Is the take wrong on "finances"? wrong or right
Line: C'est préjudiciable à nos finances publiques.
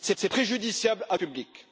wrong